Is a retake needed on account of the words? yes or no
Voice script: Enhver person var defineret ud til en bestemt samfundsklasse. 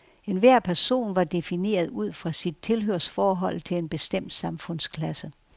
yes